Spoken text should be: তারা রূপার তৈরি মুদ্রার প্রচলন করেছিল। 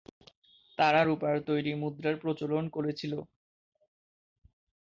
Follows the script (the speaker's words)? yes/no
yes